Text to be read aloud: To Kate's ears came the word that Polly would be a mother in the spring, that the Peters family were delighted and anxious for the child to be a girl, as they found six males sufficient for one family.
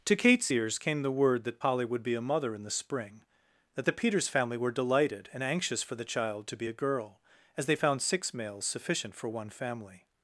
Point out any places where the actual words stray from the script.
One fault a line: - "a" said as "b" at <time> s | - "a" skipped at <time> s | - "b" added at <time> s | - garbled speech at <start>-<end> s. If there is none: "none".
none